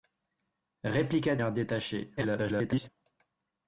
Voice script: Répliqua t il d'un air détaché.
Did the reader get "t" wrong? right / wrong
wrong